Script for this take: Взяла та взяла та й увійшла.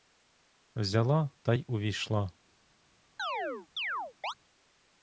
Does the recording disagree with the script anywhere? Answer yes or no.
yes